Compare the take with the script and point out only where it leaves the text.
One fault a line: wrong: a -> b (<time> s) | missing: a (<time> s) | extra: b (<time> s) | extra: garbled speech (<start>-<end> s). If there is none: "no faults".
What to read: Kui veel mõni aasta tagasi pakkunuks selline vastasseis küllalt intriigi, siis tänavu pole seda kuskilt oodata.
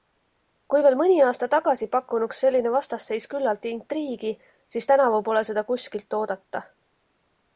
no faults